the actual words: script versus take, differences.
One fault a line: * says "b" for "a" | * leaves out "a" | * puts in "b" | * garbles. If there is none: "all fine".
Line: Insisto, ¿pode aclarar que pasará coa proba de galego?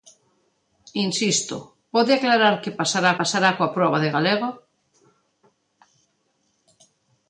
* puts in "pasará"